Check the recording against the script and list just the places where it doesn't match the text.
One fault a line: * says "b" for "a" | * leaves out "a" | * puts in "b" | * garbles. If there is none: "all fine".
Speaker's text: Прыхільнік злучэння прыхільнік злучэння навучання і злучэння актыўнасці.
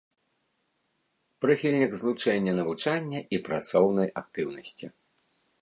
* leaves out "прыхільнік злучэння"
* says "працоўнай" for "злучэння"